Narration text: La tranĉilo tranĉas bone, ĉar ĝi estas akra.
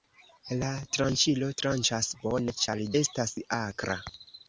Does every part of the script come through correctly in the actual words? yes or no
no